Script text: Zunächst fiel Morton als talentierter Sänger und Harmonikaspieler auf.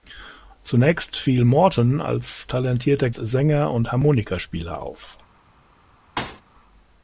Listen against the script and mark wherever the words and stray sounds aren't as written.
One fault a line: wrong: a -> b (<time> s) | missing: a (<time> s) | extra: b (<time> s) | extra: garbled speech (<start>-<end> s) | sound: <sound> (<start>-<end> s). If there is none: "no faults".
sound: thud (6.2-6.4 s)